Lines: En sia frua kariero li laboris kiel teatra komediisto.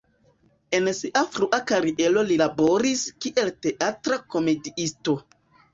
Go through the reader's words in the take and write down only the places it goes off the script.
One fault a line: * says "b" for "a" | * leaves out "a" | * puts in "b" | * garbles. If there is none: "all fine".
all fine